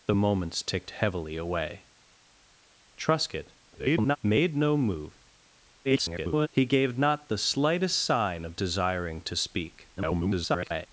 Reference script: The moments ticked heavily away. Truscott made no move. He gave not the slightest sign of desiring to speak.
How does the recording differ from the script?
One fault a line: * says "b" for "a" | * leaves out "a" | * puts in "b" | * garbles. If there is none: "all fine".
* garbles
* garbles
* garbles